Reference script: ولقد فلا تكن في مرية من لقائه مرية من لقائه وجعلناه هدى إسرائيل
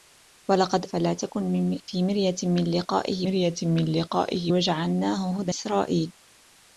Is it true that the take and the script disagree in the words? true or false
false